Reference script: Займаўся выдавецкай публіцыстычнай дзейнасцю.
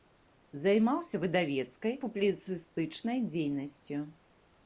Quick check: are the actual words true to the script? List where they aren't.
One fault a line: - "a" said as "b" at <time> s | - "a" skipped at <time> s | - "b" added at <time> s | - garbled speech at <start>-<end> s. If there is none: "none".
none